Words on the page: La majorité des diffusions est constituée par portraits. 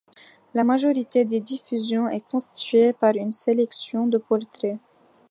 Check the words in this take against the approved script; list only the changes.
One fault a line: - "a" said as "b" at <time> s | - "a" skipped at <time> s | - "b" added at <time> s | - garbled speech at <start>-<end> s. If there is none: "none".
- "une sélection de" added at 3.2 s